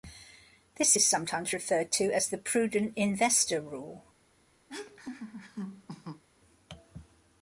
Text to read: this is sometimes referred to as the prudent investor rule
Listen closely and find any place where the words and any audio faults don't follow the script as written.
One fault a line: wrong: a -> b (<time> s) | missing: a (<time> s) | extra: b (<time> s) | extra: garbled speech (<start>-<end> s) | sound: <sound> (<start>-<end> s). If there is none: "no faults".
sound: laugh (4.7-6.2 s)